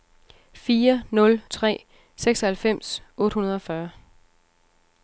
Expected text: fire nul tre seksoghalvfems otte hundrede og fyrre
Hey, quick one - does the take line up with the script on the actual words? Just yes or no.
yes